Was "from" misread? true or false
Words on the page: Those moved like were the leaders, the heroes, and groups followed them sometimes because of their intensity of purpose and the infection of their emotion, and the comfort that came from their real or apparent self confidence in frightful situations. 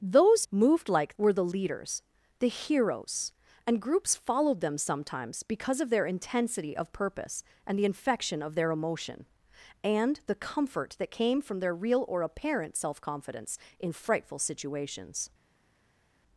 false